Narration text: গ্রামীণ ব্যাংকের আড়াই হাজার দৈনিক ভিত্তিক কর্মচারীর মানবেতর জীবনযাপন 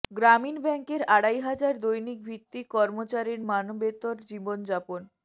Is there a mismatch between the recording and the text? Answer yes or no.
no